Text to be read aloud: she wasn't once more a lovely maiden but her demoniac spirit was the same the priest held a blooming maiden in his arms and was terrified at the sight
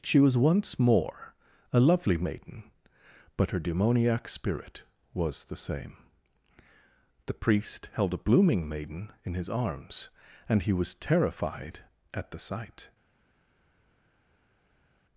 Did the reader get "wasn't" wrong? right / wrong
wrong